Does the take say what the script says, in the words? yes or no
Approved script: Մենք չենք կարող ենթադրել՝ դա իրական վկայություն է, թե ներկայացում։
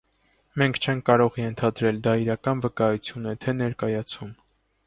yes